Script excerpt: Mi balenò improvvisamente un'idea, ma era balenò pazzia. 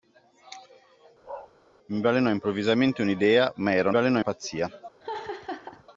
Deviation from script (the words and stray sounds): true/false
true